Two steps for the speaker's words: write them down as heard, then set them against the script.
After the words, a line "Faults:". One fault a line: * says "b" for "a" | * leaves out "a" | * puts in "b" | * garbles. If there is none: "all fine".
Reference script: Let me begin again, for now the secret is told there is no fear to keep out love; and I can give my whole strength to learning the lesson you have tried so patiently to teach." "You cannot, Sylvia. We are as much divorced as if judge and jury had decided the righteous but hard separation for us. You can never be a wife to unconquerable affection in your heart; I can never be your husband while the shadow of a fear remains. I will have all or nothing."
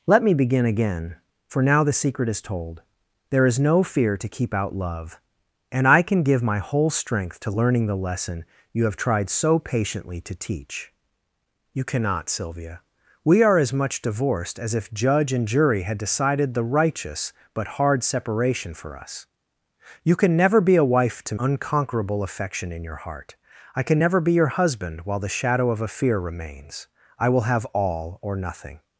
Let me begin again, for now the secret is told there is no fear to keep out love; and I can give my whole strength to learning the lesson you have tried so patiently to teach." "You cannot, Sylvia. We are as much divorced as if judge and jury had decided the righteous but hard separation for us. You can never be a wife to unconquerable affection in your heart; I can never be your husband while the shadow of a fear remains. I will have all or nothing."
Faults:
all fine